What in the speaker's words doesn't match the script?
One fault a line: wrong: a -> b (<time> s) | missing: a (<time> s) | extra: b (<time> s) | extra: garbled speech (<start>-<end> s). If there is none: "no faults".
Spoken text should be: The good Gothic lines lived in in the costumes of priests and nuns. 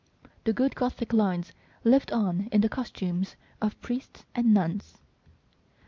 wrong: in -> on (2.1 s)